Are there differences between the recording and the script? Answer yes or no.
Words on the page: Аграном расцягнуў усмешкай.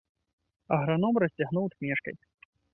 no